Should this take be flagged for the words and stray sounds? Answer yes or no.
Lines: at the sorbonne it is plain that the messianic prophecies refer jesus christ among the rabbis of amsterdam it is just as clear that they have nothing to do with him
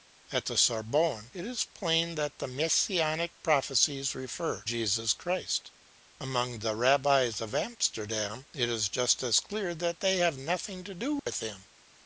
yes